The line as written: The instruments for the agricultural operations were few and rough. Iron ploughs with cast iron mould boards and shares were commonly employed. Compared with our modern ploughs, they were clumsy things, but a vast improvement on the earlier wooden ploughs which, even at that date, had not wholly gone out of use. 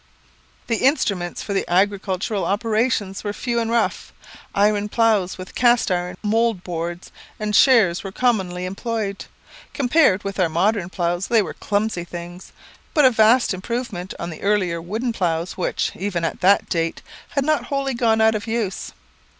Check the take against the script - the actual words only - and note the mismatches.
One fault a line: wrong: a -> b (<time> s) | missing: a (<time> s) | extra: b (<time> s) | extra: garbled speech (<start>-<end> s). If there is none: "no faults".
no faults